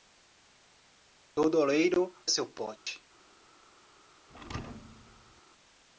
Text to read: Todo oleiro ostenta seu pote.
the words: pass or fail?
fail